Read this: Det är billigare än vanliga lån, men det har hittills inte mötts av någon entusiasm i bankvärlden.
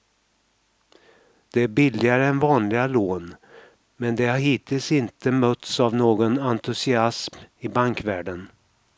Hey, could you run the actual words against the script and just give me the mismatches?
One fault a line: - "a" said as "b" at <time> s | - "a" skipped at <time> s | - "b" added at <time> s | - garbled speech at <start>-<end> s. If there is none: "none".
none